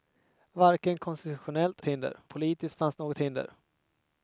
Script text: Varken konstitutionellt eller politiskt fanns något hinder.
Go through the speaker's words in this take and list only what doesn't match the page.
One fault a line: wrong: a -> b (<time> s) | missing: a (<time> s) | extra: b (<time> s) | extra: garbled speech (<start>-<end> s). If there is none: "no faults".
wrong: eller -> hinder (1.8 s)